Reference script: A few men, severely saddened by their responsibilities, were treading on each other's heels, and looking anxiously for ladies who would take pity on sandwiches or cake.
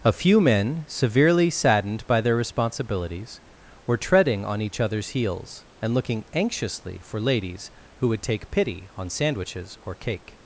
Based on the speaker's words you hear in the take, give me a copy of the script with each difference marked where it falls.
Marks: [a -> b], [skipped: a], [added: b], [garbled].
A few men, severely saddened by their responsibilities, were treading on each other's heels, and looking anxiously for ladies who would take pity on sandwiches or cake.